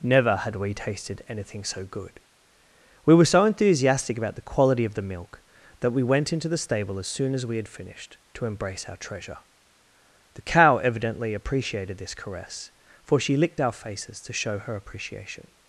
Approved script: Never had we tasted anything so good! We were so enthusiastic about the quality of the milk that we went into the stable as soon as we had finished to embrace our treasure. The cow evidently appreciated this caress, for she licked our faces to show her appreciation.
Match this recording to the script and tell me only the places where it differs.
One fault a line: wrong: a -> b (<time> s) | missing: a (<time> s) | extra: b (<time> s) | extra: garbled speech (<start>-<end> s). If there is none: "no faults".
no faults